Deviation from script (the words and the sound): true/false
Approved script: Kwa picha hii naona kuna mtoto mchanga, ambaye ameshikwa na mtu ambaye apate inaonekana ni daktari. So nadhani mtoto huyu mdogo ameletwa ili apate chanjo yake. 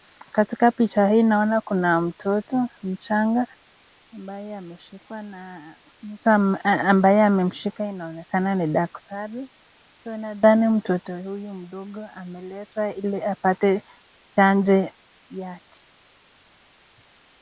true